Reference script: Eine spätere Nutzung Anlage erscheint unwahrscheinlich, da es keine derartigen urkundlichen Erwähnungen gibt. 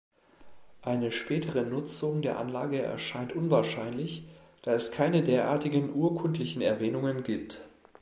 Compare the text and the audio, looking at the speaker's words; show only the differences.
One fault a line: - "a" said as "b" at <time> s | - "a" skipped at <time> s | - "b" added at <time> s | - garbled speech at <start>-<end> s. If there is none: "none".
- "der" added at 2.2 s